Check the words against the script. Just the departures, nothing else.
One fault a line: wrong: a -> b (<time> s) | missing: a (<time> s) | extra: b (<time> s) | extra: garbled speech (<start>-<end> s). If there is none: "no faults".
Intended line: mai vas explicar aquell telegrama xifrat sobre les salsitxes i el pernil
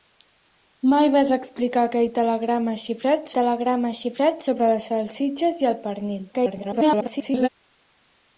extra: telegrama xifrat (3.3 s)
extra: garbled speech (6.3-7.5 s)